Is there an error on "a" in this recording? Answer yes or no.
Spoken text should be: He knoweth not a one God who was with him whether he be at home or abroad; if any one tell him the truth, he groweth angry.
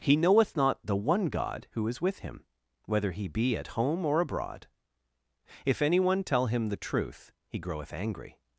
yes